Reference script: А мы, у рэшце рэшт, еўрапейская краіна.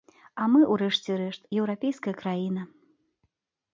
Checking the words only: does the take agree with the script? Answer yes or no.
yes